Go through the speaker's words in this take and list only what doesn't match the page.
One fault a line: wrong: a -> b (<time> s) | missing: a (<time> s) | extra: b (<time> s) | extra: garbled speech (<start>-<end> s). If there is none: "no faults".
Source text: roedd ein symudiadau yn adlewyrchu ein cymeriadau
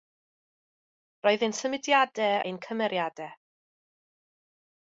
missing: yn adlewyrchu (2.4 s)